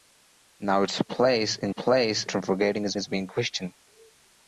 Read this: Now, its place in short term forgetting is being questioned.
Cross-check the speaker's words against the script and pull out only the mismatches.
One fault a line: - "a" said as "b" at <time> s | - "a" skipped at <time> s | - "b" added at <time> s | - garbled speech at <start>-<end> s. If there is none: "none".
- "short" said as "place" at 1.7 s
- "is" added at 3.0 s